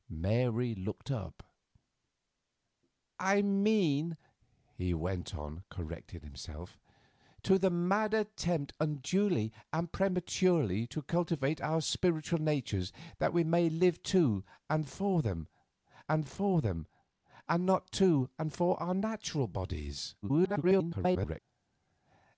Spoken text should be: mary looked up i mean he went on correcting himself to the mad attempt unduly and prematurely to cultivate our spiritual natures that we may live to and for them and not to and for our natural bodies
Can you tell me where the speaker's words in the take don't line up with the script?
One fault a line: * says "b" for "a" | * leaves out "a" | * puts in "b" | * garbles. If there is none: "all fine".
* puts in "for them and"
* garbles